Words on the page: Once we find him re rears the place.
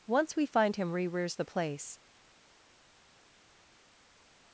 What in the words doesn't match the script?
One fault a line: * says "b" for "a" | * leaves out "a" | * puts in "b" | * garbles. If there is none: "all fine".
all fine